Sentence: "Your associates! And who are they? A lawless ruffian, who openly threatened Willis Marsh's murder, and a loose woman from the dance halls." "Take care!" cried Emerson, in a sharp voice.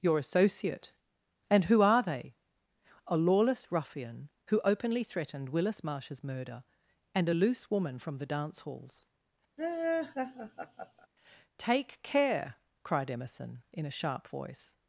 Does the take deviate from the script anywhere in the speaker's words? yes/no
yes